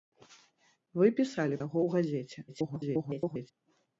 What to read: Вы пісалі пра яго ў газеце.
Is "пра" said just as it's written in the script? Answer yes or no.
no